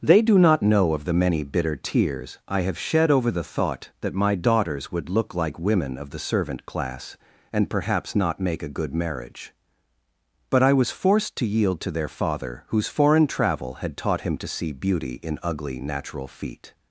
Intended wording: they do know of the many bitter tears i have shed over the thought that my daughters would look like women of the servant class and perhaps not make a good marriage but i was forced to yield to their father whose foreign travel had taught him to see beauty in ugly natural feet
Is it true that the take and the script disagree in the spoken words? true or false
true